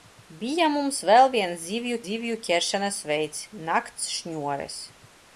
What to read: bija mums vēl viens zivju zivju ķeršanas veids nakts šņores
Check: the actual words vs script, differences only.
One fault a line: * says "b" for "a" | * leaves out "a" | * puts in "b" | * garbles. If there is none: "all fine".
all fine